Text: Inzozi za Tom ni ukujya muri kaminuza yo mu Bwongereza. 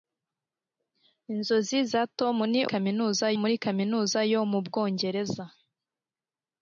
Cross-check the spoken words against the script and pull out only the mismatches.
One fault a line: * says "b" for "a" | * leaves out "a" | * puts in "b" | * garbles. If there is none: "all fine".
* says "kaminuza" for "ukujya"